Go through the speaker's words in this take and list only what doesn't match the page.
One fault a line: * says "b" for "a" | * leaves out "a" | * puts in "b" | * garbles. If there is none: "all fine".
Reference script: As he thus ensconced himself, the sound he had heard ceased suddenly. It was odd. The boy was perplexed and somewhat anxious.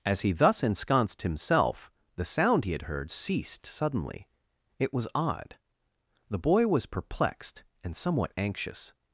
all fine